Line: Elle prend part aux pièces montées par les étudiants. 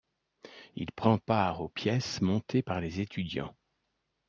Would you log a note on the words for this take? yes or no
yes